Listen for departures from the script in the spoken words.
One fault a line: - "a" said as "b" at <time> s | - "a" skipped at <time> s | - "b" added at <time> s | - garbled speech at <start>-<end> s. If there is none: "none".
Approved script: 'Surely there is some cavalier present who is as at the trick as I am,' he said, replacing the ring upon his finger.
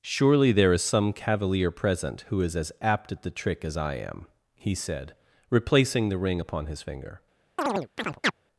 - "apt" added at 2.8 s